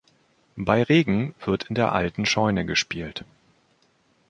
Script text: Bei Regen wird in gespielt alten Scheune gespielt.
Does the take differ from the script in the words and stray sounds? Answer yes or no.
yes